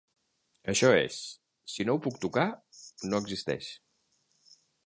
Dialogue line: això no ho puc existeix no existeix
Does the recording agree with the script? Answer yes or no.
no